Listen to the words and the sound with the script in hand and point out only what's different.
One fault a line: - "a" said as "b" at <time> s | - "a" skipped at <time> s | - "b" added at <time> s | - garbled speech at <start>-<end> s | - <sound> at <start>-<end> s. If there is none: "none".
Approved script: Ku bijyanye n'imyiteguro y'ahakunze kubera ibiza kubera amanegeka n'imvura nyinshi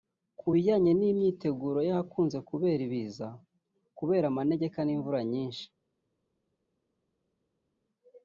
none